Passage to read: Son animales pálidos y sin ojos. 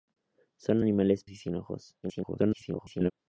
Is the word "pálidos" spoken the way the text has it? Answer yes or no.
no